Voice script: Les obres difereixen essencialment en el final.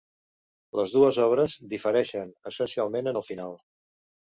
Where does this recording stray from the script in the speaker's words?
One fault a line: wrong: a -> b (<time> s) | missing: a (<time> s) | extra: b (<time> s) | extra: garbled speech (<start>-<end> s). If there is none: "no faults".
extra: dues (0.9 s)